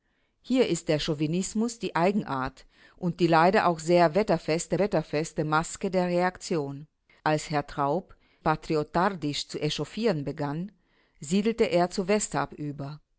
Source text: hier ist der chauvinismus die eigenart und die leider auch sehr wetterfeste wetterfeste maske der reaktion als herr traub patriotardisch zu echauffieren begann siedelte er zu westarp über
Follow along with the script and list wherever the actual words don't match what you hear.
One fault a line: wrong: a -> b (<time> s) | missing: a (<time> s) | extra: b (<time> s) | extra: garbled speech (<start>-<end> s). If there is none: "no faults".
no faults